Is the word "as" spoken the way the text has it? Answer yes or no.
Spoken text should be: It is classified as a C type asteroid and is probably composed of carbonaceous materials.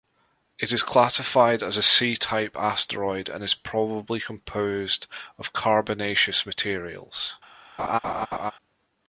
yes